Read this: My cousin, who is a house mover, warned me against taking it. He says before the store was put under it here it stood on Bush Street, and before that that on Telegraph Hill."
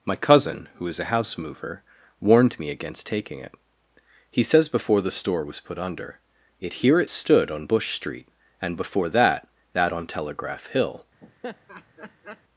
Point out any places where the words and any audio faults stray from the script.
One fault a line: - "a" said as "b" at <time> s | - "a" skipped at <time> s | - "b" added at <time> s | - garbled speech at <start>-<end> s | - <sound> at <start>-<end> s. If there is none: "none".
- laugh at 11.2-12.4 s